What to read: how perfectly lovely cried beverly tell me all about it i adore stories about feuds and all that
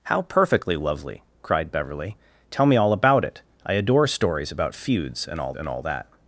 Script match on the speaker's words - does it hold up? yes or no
no